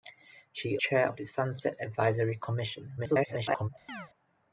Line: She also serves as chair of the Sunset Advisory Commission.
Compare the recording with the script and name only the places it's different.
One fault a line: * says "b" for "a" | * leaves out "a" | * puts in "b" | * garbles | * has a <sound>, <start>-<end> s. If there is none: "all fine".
* leaves out "also serves as"
* garbles
* has a chirp, 3.9-4.1 s